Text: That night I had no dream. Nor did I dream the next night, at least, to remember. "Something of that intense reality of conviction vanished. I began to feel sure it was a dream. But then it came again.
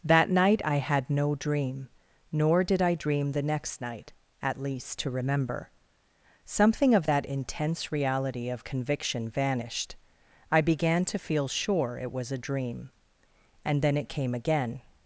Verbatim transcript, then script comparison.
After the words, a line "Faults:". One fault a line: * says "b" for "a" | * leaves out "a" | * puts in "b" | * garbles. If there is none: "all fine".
That night I had no dream. Nor did I dream the next night, at least, to remember. "Something of that intense reality of conviction vanished. I began to feel sure it was a dream. And then it came again.
Faults:
* says "And" for "But"